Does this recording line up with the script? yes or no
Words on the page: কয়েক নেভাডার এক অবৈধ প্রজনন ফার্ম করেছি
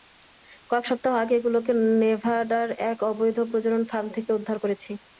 no